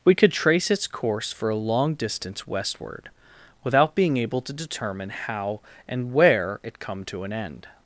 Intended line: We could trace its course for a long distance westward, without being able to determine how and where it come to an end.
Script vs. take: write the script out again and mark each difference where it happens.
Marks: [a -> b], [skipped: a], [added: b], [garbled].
We could trace its course for a long distance westward, without being able to determine how and where it come to an end.